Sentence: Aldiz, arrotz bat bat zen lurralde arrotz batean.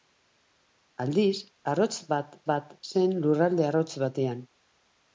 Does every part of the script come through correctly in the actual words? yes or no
yes